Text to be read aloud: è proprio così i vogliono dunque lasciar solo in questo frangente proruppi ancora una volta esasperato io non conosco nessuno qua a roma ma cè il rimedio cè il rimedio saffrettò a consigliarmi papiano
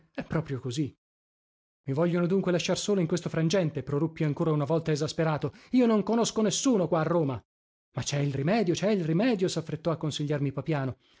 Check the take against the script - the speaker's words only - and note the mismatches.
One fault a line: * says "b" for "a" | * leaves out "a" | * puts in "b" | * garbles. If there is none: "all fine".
all fine